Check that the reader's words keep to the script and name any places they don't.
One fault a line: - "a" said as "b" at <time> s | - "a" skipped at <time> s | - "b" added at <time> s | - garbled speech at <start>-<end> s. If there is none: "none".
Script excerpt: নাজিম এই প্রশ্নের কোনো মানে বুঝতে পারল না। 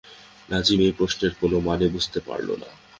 none